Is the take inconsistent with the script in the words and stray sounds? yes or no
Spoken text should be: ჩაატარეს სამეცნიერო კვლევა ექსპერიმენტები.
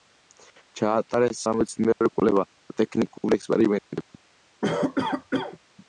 yes